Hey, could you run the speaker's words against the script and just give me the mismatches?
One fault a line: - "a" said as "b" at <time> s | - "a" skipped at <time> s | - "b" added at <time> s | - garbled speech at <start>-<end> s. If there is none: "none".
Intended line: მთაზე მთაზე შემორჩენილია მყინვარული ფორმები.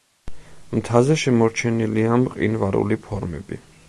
- "მთაზე" skipped at 1.2 s